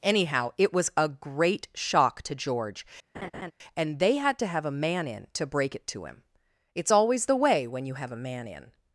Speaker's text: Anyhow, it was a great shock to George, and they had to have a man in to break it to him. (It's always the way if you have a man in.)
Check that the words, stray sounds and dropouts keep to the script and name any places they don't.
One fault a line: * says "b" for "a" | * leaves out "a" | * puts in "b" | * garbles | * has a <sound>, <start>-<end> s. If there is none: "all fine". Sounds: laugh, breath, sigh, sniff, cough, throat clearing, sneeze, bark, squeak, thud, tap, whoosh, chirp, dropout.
* has a laugh, 3.1-3.5 s
* says "when" for "if"